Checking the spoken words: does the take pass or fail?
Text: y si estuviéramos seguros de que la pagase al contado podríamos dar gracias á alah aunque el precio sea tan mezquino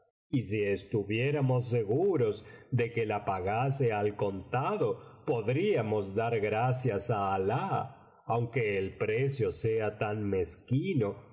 pass